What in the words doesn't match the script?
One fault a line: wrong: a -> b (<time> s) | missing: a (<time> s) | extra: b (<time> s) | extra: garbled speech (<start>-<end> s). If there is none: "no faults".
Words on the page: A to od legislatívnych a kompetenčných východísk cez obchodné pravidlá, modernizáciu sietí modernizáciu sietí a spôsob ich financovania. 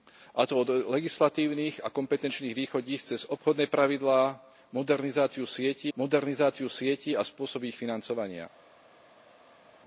no faults